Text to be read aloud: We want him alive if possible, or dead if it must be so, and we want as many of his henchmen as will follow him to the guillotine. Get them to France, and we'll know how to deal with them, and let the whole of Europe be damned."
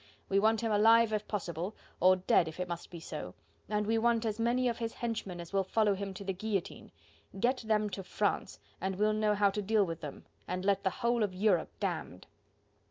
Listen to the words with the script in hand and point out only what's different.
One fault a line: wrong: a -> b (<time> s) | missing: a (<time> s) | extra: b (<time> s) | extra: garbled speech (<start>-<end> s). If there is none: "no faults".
missing: be (11.8 s)